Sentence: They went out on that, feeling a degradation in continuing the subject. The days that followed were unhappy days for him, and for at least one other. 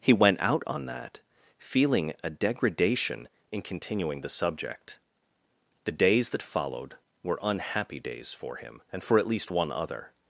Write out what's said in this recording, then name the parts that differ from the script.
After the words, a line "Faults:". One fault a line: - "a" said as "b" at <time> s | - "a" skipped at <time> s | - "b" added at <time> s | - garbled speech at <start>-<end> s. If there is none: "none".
He went out on that, feeling a degradation in continuing the subject. The days that followed were unhappy days for him, and for at least one other.
Faults:
- "They" said as "He" at 0.0 s